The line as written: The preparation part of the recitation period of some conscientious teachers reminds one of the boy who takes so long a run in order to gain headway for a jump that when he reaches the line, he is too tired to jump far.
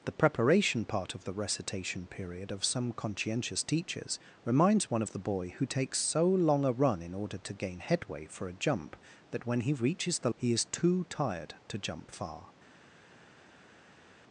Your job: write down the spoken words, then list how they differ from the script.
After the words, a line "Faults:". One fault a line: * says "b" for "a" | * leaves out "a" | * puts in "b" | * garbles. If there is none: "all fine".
The preparation part of the recitation period of some conscientious teachers reminds one of the boy who takes so long a run in order to gain headway for a jump that when he reaches the he is too tired to jump far.
Faults:
* leaves out "line"